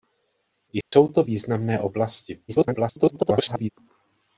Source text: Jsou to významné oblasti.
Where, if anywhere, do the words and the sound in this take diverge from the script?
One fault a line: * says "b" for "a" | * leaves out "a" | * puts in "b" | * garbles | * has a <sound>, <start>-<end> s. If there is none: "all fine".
* has a dropout, 0.8-0.9 s
* garbles